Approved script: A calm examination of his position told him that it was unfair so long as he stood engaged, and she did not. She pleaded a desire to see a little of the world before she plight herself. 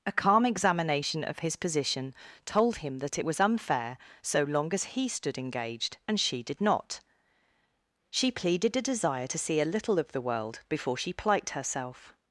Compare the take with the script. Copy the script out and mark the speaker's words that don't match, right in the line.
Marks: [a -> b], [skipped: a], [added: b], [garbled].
A calm examination of his position told him that it was unfair so long as he stood engaged, and she did not. She pleaded a desire to see a little of the world before she plight herself.